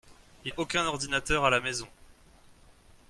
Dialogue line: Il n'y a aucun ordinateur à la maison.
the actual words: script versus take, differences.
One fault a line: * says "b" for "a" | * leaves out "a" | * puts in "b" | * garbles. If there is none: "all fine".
* leaves out "n'y"